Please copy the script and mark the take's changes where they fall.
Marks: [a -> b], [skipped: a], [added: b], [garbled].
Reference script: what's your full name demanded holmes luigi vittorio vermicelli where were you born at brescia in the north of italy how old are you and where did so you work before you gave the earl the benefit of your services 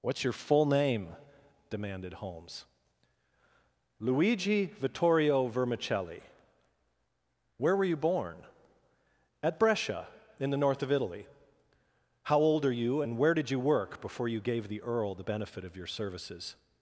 what's your full name demanded holmes luigi vittorio vermicelli where were you born at brescia in the north of italy how old are you and where did [skipped: so] you work before you gave the earl the benefit of your services